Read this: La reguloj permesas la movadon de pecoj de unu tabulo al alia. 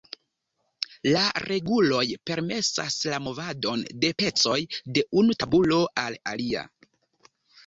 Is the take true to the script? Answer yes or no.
yes